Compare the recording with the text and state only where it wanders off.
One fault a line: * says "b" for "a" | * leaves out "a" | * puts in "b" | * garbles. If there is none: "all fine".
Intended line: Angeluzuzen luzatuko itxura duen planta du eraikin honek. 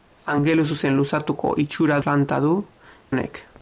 * leaves out "duen"
* leaves out "eraikin"